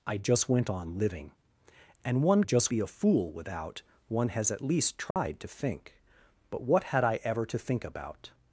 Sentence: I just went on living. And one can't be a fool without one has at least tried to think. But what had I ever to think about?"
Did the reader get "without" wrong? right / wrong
right